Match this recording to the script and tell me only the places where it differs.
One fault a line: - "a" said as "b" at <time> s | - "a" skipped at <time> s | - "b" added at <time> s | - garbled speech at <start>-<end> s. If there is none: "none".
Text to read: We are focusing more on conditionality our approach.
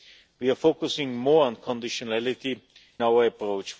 none